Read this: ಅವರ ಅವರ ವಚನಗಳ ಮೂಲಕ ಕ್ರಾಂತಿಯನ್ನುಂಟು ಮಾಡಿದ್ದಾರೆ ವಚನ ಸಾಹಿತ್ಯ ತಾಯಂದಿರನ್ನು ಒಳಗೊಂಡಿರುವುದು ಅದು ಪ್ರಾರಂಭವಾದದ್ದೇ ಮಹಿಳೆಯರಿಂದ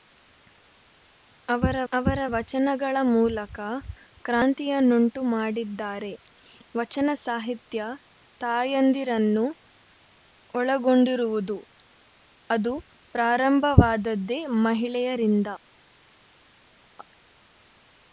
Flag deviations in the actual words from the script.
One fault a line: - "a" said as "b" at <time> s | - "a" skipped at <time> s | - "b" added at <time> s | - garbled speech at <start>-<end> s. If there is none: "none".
none